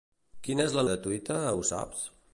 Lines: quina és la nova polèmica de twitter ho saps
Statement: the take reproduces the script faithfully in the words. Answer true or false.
false